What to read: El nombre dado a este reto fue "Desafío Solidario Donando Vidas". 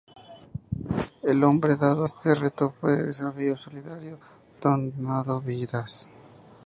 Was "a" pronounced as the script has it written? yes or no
no